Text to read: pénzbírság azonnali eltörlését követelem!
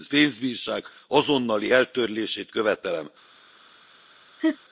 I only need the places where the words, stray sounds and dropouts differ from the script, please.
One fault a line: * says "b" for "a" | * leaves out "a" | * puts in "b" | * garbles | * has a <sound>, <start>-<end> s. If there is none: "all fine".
* has a laugh, 4.4-4.6 s